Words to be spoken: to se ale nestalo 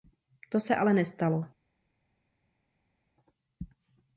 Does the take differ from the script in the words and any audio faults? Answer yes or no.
no